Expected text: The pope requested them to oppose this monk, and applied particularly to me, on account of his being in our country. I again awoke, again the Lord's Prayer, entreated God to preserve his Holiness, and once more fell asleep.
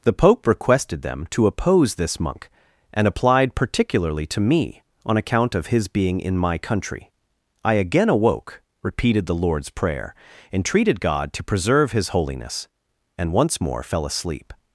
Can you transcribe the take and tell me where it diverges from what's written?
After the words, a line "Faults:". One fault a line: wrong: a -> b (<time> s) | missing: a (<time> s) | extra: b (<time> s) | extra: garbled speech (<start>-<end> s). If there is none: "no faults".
The pope requested them to oppose this monk, and applied particularly to me, on account of his being in my country. I again awoke, repeated the Lord's Prayer, entreated God to preserve his Holiness, and once more fell asleep.
Faults:
wrong: our -> my (6.4 s)
wrong: again -> repeated (8.8 s)